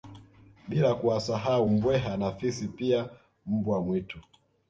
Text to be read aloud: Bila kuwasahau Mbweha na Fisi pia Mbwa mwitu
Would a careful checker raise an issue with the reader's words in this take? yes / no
no